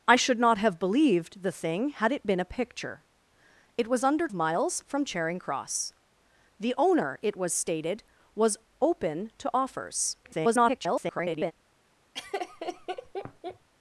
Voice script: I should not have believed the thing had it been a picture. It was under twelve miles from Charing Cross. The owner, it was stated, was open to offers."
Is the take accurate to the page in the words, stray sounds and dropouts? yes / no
no